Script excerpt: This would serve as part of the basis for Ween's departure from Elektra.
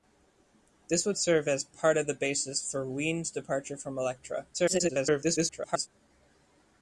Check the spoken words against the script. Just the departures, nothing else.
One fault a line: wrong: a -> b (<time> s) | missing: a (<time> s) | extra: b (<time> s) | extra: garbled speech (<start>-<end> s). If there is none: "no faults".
extra: garbled speech (4.5-5.9 s)